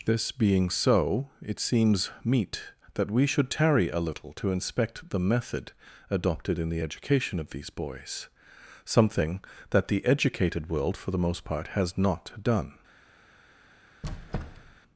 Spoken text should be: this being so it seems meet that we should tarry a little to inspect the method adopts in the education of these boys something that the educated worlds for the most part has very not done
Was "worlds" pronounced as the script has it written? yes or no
no